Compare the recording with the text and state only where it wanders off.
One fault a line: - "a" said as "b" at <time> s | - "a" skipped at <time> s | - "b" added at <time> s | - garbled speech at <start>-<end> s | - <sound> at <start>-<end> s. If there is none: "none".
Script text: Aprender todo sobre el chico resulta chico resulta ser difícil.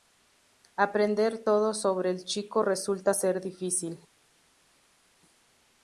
- "chico resulta" skipped at 3.2 s